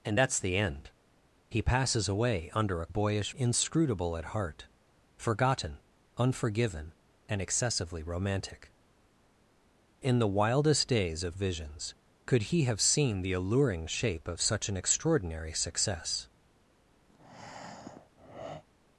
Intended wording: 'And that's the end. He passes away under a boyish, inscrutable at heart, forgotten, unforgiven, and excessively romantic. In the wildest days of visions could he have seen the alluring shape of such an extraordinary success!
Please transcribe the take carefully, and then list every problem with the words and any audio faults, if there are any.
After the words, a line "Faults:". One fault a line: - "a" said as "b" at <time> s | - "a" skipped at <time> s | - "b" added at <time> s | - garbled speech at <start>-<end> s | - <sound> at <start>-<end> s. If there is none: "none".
'And that's the end. He passes away under a boyish, inscrutable at heart, forgotten, unforgiven, and excessively romantic. In the wildest days of visions could he have seen the alluring shape of such an extraordinary success!
Faults:
- breath at 17.1-18.6 s